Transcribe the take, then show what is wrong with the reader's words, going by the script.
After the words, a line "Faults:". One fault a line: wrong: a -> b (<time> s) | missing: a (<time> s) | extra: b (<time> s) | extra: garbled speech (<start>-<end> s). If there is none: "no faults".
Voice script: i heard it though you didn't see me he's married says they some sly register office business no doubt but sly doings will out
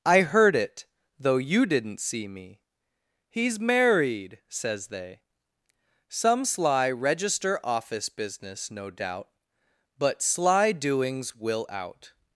i heard it though you didn't see me he's married says they some sly register office business no doubt but sly doings will out
Faults:
no faults